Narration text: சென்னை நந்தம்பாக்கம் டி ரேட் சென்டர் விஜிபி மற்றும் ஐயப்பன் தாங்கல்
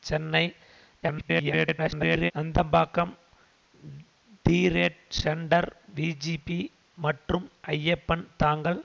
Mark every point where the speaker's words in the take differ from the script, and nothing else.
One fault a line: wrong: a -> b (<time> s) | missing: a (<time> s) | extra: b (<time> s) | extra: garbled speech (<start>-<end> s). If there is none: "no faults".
extra: garbled speech (1.0-2.3 s)